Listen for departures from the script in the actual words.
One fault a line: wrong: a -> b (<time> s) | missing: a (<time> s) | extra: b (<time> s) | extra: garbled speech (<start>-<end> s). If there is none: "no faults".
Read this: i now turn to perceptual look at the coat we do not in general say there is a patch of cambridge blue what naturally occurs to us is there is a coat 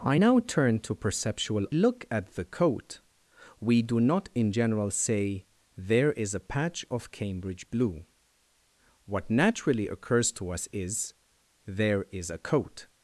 no faults